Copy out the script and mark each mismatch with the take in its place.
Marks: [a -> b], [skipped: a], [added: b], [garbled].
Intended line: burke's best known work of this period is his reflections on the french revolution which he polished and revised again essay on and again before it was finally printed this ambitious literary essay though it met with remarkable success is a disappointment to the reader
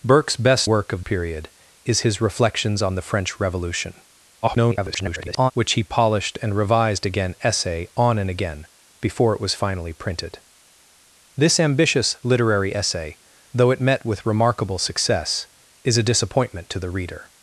burke's best [skipped: known] work of [skipped: this] period is his reflections on the french revolution [garbled] which he polished and revised again essay on and again before it was finally printed this ambitious literary essay though it met with remarkable success is a disappointment to the reader